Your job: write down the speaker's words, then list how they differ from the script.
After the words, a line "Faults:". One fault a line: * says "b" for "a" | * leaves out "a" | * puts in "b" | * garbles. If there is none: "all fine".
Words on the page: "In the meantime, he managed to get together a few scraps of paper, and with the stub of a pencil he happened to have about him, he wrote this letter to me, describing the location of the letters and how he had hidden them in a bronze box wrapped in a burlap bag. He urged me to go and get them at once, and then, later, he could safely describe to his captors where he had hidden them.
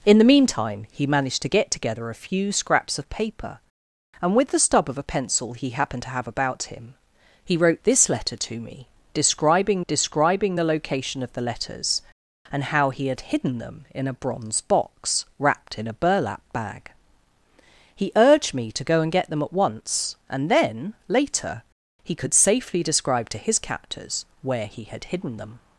"In the meantime, he managed to get together a few scraps of paper, and with the stub of a pencil he happened to have about him, he wrote this letter to me, describing describing the location of the letters and how he had hidden them in a bronze box wrapped in a burlap bag. He urged me to go and get them at once, and then, later, he could safely describe to his captors where he had hidden them.
Faults:
* puts in "describing"